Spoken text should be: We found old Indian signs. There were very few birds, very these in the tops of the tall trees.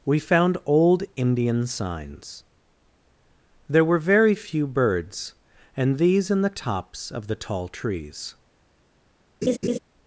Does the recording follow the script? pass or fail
fail